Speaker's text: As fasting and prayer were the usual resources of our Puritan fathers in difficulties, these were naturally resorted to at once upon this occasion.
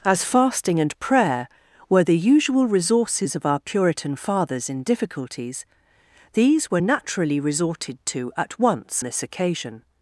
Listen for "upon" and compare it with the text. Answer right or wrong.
wrong